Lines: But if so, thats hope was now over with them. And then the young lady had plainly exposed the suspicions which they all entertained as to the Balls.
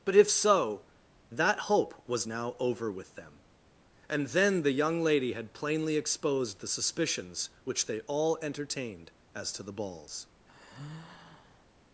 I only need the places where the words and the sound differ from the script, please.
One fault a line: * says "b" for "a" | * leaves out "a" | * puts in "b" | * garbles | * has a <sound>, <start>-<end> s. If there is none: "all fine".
* says "that" for "thats"
* has a sigh, 10.5-11.7 s